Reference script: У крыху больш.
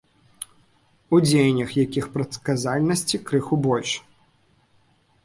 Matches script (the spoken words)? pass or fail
fail